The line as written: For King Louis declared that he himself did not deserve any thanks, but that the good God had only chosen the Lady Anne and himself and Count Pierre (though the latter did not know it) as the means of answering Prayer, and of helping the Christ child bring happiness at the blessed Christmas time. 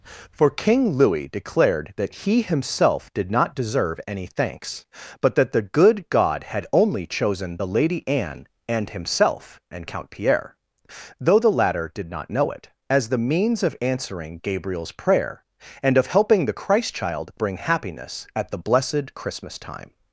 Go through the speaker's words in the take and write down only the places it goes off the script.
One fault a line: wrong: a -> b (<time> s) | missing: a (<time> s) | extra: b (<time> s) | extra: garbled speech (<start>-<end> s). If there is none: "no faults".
extra: Gabriel's (14.4 s)